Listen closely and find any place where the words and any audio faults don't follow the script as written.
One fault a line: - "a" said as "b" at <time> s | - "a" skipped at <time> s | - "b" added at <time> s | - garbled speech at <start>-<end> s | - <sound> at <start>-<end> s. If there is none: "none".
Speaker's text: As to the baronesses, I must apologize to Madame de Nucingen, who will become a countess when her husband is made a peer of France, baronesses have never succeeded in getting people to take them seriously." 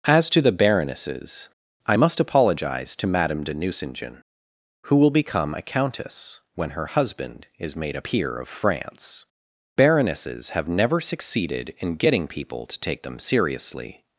none